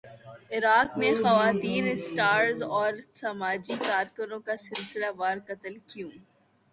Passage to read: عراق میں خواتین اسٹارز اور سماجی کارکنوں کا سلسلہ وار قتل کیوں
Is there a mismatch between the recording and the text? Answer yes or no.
no